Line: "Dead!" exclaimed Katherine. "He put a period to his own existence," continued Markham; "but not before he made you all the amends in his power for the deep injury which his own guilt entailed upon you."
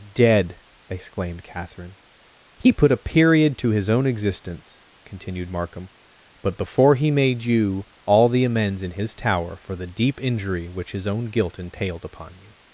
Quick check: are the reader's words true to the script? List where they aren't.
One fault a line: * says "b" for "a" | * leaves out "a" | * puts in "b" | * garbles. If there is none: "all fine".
* leaves out "not"
* says "tower" for "power"